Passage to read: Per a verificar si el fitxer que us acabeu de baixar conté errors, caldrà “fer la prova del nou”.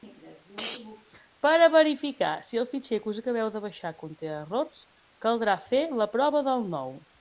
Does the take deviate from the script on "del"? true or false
false